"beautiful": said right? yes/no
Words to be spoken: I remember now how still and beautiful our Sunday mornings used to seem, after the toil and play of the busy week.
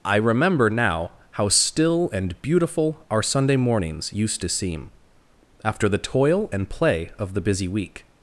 yes